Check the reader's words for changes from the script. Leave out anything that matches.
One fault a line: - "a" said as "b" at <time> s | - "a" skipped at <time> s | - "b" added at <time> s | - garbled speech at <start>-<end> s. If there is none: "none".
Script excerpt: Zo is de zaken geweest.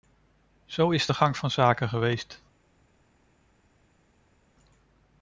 - "gang van" added at 1.1 s